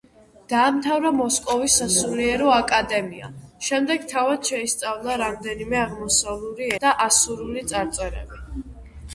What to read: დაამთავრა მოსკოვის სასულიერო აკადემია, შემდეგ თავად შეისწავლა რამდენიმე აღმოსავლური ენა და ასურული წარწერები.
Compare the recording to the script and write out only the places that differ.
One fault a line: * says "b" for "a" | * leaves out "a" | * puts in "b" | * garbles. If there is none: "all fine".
* leaves out "ენა"